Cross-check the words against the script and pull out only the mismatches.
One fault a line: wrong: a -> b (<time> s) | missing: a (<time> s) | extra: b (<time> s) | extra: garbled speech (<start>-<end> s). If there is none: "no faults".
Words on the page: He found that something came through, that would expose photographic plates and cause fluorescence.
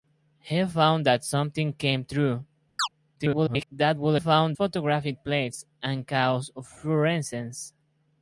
extra: garbled speech (3.2-3.7 s)
wrong: expose -> found (4.2 s)